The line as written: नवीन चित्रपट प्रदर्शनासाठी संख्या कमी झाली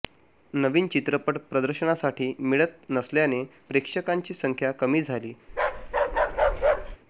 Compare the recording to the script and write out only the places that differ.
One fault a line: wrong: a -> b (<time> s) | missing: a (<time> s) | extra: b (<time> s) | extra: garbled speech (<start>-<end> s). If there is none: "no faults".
extra: मिळत नसल्याने प्रेक्षकांची (2.4 s)